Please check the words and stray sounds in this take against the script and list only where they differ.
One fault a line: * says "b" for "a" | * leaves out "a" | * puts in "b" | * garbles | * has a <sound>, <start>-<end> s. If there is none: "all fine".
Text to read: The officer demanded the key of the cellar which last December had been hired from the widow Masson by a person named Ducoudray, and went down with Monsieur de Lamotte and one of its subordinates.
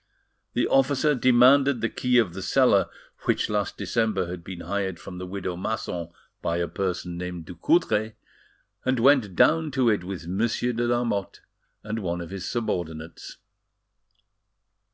* puts in "to it"
* says "his" for "its"